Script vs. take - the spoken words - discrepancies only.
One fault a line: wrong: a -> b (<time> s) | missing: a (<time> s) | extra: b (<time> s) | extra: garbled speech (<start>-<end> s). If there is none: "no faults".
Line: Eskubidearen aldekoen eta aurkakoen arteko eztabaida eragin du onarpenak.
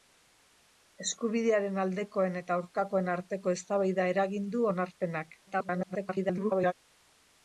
extra: garbled speech (5.5-6.7 s)